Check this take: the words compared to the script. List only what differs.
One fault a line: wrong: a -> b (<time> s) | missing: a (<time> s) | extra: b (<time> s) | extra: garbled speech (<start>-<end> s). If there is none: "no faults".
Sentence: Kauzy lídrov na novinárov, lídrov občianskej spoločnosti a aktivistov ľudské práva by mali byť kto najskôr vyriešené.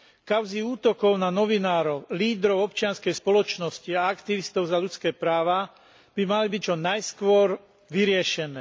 wrong: lídrov -> útokov (0.6 s)
extra: za (4.7 s)
wrong: kto -> čo (6.6 s)